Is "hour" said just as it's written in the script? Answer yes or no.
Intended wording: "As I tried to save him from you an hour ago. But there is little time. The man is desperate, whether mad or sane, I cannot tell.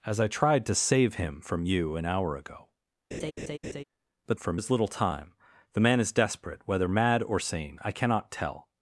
yes